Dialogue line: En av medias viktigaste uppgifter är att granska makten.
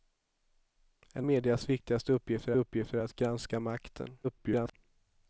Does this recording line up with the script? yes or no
no